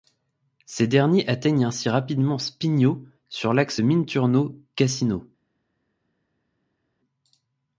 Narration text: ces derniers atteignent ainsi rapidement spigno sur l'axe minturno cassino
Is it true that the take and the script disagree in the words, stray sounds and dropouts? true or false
false